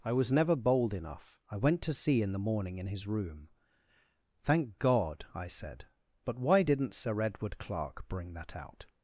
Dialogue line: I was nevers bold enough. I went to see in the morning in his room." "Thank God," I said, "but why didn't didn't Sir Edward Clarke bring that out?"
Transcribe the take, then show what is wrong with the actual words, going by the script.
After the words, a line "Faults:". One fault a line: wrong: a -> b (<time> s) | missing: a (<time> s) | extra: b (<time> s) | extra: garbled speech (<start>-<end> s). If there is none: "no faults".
I was never bold enough. I went to see in the morning in his room." "Thank God," I said, "but why didn't Sir Edward Clarke bring that out?"
Faults:
wrong: nevers -> never (0.3 s)
missing: didn't (6.9 s)